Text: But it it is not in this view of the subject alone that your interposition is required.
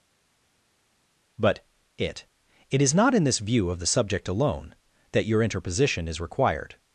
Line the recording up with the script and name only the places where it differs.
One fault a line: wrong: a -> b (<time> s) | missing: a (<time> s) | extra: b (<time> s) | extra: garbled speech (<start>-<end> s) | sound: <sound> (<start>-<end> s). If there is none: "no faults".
no faults